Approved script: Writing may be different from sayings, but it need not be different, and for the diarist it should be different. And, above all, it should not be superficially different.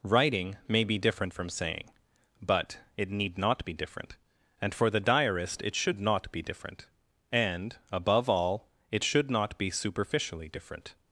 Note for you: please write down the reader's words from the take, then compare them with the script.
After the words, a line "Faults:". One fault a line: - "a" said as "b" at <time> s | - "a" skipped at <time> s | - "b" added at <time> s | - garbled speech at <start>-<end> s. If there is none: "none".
Writing may be different from saying, but it need not be different, and for the diarist it should not be different. And, above all, it should not be superficially different.
Faults:
- "sayings" said as "saying" at 1.5 s
- "not" added at 6.0 s